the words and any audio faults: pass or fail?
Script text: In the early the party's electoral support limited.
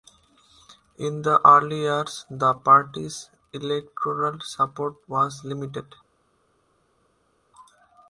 fail